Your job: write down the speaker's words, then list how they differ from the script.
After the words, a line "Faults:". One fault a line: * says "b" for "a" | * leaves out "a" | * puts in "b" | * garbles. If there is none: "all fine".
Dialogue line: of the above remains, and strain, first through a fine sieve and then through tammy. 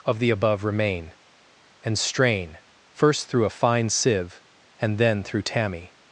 of the above remain, and strain, first through a fine sieve and then through tammy.
Faults:
* says "remain" for "remains"